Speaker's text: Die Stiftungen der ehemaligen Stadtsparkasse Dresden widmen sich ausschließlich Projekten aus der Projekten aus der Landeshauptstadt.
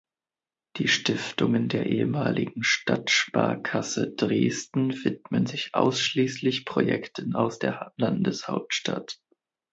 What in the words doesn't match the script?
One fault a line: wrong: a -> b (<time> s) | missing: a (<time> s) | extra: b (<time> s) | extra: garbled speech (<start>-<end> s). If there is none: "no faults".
missing: Projekten aus der (7.9 s)